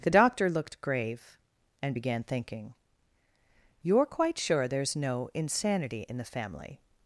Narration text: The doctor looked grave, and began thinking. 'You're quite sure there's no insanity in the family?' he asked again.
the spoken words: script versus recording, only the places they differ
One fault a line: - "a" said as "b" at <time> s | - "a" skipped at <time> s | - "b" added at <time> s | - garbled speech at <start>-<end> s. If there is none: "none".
- "he asked again" skipped at 6.8 s